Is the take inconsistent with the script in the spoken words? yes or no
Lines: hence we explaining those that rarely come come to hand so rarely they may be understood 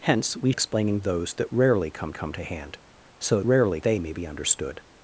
no